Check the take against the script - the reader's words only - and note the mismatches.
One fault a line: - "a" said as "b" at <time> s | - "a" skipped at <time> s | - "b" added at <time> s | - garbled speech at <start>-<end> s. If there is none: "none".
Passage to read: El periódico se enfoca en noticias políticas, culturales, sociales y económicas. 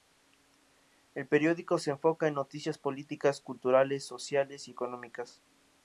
none